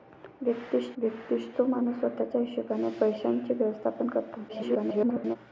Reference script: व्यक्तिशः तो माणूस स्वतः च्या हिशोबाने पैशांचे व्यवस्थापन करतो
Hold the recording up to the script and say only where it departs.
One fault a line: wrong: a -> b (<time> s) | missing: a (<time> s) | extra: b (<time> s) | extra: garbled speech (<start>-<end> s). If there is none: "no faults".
extra: व्यक्तिशः (1.0 s)
extra: garbled speech (4.5-5.4 s)